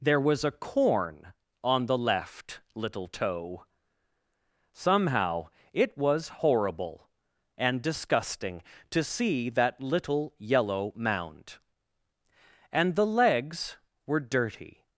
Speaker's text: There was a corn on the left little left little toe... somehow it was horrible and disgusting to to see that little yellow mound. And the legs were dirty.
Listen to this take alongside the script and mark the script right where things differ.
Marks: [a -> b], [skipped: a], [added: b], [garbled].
There was a corn on the left little [skipped: left little] toe... somehow it was horrible and disgusting to [skipped: to] see that little yellow mound. And the legs were dirty.